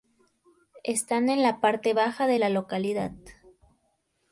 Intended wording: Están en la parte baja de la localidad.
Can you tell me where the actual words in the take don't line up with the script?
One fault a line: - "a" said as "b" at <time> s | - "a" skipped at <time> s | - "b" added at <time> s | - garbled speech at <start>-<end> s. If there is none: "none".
none